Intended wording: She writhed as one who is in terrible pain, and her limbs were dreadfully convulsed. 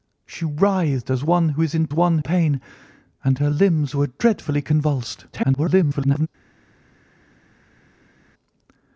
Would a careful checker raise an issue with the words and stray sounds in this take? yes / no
yes